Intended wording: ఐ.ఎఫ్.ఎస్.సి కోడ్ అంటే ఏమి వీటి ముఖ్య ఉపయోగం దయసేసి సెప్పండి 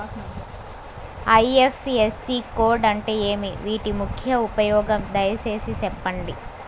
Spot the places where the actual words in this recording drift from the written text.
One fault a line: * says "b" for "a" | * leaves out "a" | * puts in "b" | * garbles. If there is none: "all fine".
all fine